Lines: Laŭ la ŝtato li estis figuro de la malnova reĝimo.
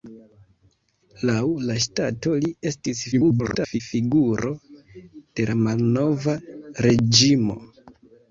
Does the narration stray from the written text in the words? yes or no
yes